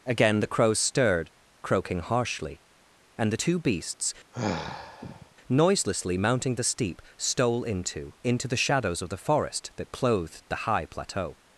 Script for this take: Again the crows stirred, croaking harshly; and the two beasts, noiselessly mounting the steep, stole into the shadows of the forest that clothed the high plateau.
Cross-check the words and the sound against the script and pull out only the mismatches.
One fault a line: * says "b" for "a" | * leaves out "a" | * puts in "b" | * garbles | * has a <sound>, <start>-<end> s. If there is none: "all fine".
* has a sigh, 4.3-5.3 s
* puts in "into"